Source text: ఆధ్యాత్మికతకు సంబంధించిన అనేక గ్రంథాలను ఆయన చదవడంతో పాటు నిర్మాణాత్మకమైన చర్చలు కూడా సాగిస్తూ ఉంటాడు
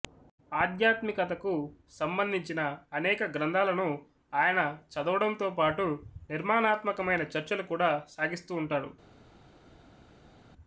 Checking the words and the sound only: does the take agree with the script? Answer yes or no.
yes